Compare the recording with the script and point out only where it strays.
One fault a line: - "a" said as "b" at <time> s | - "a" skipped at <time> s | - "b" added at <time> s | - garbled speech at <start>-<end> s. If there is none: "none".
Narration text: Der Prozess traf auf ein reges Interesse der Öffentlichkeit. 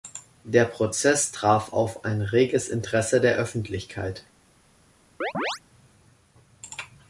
none